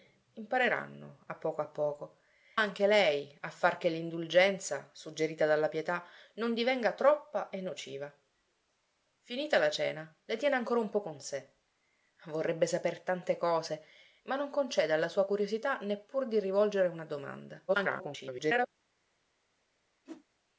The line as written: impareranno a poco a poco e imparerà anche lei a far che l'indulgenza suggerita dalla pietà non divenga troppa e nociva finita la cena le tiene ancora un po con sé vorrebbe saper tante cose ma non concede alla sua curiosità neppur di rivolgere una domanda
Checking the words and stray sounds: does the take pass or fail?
fail